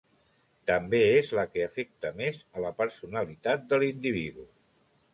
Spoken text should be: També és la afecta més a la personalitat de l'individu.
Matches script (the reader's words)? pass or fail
fail